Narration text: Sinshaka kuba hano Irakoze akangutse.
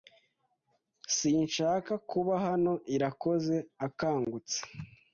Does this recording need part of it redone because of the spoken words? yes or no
no